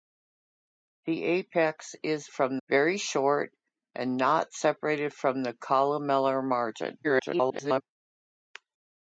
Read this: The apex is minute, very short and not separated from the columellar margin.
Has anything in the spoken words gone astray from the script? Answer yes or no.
yes